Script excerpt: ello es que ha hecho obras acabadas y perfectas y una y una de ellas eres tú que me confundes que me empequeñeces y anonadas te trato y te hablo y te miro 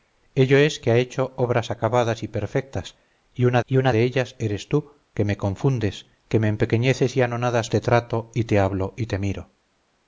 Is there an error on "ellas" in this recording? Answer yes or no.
no